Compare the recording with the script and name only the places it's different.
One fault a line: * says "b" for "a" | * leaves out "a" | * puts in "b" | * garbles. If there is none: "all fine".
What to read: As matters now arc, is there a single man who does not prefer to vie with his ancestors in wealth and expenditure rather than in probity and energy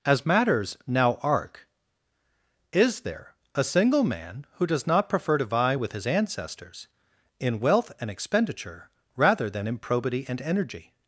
all fine